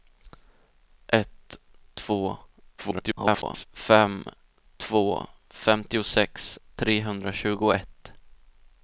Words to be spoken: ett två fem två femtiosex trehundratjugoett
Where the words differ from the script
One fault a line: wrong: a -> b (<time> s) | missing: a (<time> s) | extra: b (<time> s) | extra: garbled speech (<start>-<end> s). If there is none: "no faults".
extra: garbled speech (2.8-3.7 s)